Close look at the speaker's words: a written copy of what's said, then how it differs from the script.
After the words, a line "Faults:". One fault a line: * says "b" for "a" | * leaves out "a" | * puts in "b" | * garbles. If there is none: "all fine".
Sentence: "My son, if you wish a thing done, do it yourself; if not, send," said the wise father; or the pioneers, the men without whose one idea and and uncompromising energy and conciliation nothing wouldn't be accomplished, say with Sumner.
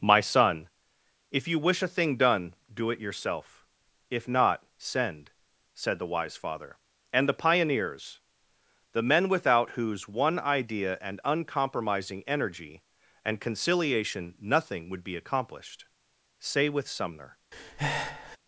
"My son, if you wish a thing done, do it yourself; if not, send," said the wise father; and the pioneers, the men without whose one idea and uncompromising energy and conciliation nothing would be accomplished, say with Sumner.
Faults:
* says "and" for "or"
* leaves out "and"
* says "would" for "wouldn't"